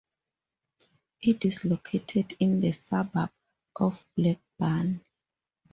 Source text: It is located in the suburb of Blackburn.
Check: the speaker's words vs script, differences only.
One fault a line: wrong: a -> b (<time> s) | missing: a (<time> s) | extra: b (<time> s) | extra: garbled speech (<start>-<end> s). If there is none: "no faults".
no faults